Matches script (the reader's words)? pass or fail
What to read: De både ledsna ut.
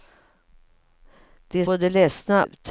pass